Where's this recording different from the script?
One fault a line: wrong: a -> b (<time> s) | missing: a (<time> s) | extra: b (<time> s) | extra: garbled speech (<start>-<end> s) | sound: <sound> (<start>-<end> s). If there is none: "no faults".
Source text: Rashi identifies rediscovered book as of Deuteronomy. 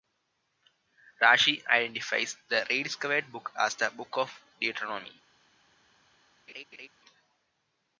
extra: the (2.5 s)
extra: the Book (3.7 s)
sound: laugh (6.5-6.9 s)